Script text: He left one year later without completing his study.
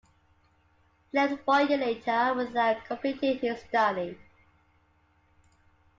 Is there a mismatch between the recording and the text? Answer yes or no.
no